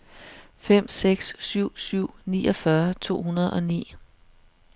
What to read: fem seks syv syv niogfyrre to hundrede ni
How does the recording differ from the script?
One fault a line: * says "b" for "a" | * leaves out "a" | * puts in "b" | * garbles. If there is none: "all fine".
* puts in "og"